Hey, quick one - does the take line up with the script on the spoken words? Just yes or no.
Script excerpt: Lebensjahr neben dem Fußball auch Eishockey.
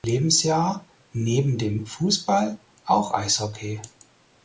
yes